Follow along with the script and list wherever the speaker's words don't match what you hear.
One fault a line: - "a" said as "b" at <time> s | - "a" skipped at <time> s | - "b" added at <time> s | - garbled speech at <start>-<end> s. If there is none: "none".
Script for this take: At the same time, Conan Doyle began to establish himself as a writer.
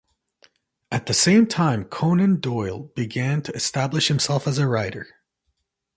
none